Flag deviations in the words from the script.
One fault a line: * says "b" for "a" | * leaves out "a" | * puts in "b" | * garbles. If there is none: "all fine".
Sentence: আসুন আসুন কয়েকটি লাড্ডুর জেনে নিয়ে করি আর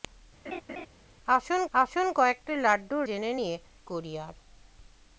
all fine